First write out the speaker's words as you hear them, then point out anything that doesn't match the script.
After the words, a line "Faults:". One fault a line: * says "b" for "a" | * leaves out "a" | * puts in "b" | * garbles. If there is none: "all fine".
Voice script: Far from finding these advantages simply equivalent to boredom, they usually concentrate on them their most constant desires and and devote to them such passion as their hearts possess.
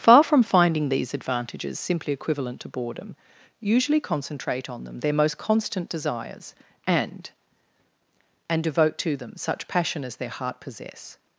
Far from finding these advantages simply equivalent to boredom, usually concentrate on them their most constant desires and and devote to them such passion as their heart possess.
Faults:
* leaves out "they"
* says "heart" for "hearts"